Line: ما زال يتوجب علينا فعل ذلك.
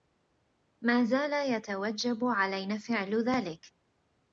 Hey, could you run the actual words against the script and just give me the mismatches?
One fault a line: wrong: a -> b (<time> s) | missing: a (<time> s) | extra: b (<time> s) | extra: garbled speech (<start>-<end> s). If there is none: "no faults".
no faults